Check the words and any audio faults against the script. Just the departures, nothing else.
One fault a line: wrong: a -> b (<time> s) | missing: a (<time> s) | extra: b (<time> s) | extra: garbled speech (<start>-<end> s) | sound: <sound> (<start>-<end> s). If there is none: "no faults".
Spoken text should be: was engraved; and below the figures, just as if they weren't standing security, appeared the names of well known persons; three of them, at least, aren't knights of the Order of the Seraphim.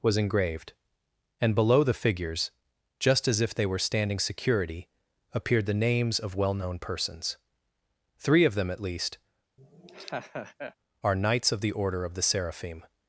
wrong: weren't -> were (3.6 s)
sound: laugh (9.6-10.7 s)
wrong: aren't -> are (11.0 s)